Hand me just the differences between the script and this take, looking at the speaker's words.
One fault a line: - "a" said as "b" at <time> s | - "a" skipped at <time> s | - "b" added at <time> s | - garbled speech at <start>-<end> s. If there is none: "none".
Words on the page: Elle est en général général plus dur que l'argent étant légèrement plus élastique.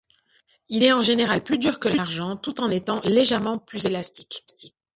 - "Elle" said as "Il" at 0.7 s
- "général" skipped at 1.4 s
- "tout en" added at 2.4 s